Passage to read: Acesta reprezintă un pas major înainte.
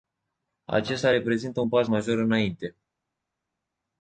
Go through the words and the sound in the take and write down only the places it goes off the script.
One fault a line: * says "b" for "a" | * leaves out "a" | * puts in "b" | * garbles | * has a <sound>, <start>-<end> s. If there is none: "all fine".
all fine